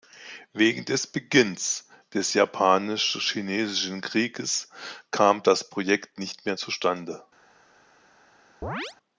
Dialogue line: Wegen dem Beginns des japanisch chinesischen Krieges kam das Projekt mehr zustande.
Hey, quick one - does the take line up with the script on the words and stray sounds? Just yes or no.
no